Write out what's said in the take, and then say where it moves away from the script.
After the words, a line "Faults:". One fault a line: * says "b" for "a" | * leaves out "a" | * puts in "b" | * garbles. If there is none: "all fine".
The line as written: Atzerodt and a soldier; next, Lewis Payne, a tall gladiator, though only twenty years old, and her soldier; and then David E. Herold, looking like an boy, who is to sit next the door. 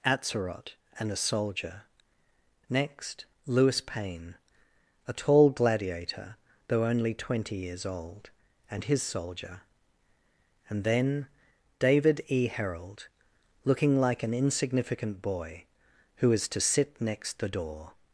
Atzerodt and a soldier; next, Lewis Payne, a tall gladiator, though only twenty years old, and his soldier; and then David E. Herold, looking like an insignificant boy, who is to sit next the door.
Faults:
* says "his" for "her"
* puts in "insignificant"